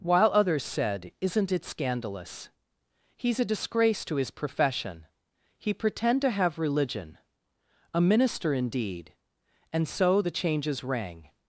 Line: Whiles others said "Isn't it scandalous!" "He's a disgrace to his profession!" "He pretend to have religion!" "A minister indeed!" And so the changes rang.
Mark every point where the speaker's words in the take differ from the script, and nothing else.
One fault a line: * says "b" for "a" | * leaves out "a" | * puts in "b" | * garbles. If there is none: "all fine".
* says "While" for "Whiles"